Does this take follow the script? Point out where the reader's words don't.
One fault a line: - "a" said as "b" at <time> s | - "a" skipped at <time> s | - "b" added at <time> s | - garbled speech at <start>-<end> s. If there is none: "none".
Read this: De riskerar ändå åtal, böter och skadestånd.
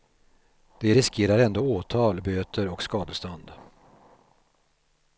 none